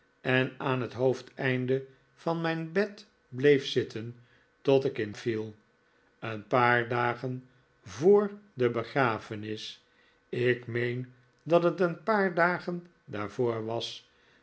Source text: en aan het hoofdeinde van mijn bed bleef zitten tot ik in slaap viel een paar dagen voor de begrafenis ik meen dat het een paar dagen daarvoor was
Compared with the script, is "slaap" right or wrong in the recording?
wrong